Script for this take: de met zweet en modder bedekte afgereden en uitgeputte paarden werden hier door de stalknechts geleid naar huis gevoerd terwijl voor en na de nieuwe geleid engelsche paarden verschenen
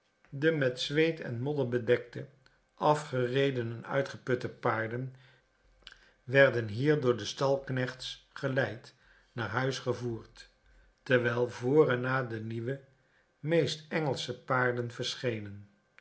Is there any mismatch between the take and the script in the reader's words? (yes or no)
yes